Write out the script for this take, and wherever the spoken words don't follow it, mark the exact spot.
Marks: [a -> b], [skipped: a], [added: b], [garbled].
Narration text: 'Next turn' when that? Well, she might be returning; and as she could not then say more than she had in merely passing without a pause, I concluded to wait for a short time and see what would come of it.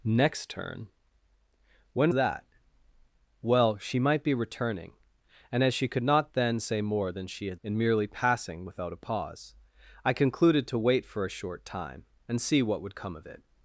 'Next turn' when that? Well, she might be returning; and as she could not then say more than she had in merely passing without a pause, I concluded to wait for a short time and see what would come of it.